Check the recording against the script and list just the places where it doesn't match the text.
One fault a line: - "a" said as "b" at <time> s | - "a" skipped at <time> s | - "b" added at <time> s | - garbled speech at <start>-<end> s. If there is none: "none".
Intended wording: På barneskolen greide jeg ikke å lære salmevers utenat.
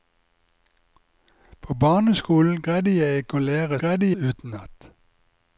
- "salmevers" said as "greide" at 3.8 s